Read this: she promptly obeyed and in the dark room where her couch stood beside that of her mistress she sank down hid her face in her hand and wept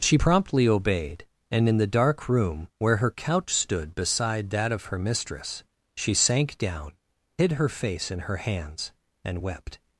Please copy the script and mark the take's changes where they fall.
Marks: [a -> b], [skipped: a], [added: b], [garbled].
she promptly obeyed and in the dark room where her couch stood beside that of her mistress she sank down hid her face in her [hand -> hands] and wept